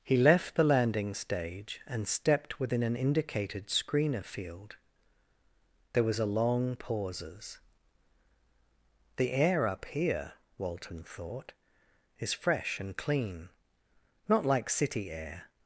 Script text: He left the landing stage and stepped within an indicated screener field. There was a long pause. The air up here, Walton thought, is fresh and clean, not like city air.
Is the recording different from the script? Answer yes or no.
yes